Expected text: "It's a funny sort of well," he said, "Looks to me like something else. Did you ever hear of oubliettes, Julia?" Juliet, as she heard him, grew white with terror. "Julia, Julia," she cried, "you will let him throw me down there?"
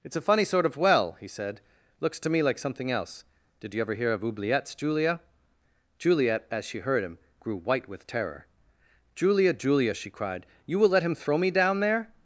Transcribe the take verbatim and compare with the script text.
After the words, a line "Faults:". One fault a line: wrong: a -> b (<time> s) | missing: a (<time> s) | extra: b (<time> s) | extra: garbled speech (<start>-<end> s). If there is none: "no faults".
"It's a funny sort of well," he said, "Looks to me like something else. Did you ever hear of oubliettes, Julia?" Juliet, as she heard him, grew white with terror. "Julia, Julia," she cried, "you will let him throw me down there?"
Faults:
no faults